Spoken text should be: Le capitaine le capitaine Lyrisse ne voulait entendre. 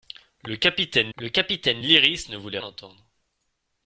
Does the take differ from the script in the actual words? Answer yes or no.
no